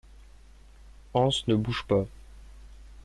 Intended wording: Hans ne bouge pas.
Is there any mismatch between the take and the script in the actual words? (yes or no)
no